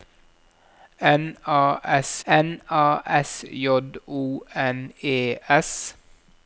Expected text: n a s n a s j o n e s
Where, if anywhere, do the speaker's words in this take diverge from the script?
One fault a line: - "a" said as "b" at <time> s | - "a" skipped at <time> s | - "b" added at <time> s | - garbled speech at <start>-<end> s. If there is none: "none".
none